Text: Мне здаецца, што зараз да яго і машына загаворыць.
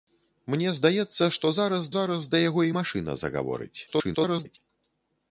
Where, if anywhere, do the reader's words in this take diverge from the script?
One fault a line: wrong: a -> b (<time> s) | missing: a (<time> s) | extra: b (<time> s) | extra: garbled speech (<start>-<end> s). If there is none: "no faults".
extra: зараз (2.0 s)
extra: garbled speech (3.9-4.6 s)